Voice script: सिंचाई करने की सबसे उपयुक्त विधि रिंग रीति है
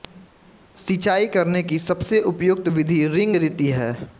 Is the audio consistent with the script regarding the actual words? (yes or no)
yes